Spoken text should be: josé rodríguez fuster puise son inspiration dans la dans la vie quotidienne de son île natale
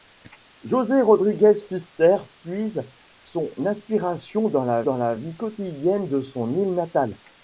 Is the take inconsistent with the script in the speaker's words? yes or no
no